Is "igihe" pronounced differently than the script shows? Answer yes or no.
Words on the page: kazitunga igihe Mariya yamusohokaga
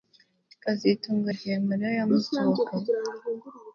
no